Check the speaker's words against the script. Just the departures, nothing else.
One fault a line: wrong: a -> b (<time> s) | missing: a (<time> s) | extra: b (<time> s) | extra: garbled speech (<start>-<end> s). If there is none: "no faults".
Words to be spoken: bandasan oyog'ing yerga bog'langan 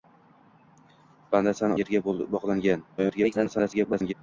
missing: oyog'ing (1.8 s)
extra: garbled speech (3.0-4.1 s)